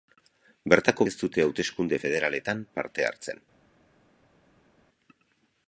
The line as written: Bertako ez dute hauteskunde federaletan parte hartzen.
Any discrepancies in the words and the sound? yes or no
no